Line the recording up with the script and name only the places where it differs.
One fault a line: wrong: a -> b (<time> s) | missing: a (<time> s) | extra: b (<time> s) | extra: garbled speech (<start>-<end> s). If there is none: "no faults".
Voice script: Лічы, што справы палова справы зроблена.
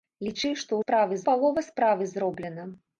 no faults